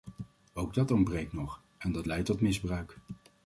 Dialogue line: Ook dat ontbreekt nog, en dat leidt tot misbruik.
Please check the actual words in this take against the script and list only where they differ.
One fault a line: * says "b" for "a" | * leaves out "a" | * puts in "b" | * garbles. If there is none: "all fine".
all fine